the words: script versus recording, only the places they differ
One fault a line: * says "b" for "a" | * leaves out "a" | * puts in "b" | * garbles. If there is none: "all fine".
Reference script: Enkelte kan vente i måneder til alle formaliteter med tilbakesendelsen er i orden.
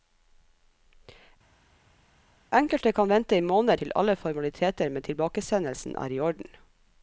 all fine